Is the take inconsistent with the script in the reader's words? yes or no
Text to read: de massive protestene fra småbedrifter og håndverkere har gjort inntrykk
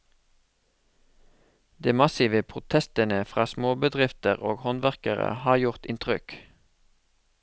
no